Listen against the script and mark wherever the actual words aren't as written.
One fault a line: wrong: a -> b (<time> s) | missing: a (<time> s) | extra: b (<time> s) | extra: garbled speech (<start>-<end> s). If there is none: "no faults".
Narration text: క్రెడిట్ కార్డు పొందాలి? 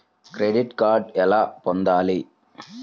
extra: ఎలా (1.2 s)